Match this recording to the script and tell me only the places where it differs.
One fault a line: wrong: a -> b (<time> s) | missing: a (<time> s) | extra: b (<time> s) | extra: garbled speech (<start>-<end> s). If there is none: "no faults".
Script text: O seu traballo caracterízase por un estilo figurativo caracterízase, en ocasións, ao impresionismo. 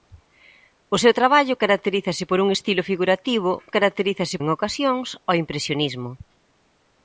no faults